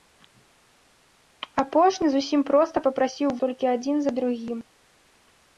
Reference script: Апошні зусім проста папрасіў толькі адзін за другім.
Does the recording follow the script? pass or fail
pass